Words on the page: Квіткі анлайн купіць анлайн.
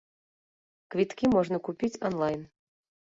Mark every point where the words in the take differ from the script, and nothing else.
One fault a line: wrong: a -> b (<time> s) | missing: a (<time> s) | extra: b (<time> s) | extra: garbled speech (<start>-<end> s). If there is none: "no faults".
wrong: анлайн -> можна (1.4 s)